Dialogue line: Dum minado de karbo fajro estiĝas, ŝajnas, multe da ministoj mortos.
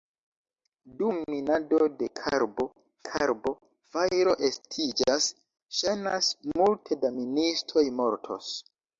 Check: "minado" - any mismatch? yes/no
no